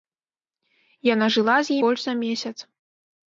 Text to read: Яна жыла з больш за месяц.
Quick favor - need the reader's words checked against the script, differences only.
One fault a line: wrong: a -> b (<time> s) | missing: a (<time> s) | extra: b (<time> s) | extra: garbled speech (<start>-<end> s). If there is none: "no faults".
no faults